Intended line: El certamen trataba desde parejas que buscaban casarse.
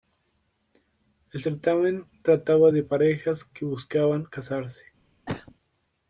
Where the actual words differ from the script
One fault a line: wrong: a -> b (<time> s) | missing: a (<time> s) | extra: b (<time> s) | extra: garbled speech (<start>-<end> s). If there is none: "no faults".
wrong: desde -> de (2.7 s)